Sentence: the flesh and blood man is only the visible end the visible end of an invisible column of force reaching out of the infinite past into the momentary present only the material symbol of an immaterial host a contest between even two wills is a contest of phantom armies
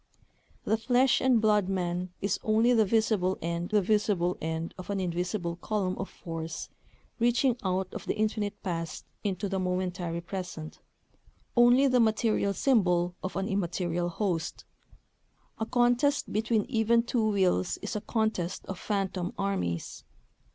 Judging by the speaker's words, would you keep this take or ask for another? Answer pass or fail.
pass